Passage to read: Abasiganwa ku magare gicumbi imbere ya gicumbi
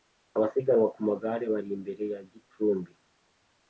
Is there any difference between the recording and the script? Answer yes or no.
yes